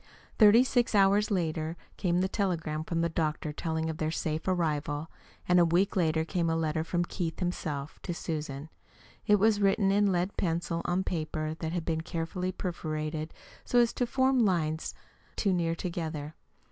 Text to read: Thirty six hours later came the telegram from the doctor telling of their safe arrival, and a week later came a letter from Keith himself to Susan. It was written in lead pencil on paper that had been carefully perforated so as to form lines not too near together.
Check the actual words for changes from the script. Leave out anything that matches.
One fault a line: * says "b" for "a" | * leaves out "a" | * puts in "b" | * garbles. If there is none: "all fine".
* leaves out "not"